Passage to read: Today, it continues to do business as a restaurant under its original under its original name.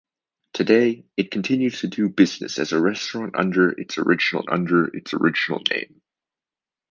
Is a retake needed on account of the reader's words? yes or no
no